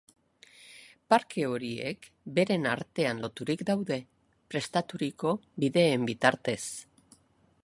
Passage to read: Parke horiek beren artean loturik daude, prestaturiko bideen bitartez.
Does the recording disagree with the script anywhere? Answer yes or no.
no